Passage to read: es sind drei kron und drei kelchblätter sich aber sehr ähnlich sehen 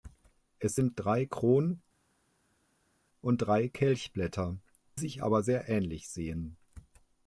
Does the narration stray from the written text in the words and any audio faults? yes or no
no